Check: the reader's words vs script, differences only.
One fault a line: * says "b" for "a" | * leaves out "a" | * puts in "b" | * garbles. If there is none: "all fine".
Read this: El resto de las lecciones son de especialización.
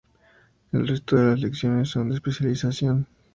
all fine